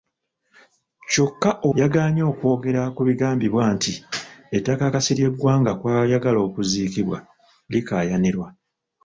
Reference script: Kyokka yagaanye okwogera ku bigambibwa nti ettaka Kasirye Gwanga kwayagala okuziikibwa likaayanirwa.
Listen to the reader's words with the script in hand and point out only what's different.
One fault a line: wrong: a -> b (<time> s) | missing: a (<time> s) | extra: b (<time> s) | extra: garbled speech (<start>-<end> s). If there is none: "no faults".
no faults